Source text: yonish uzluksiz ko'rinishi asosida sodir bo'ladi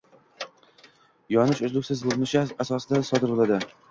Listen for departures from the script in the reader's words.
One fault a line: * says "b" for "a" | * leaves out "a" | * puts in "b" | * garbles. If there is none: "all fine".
all fine